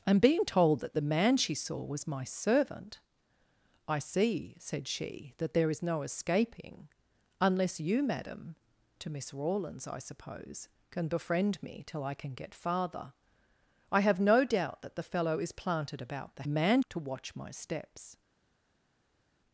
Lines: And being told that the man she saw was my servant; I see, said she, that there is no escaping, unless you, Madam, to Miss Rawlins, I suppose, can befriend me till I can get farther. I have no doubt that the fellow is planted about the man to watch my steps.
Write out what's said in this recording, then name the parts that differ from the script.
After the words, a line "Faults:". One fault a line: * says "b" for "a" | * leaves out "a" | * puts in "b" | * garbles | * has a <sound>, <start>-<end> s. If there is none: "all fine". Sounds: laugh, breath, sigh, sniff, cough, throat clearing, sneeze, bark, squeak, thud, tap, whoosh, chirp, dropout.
And being told that the man she saw was my servant; I see, said she, that there is no escaping, unless you, Madam, to Miss Rawlins, I suppose, can befriend me till I can get farther. I have no doubt that the fellow is planted about the man to watch my steps.
Faults:
all fine